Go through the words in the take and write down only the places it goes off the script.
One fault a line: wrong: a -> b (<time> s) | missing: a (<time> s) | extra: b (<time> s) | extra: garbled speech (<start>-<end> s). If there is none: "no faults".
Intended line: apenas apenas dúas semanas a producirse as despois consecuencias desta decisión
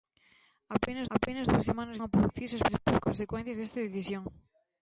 no faults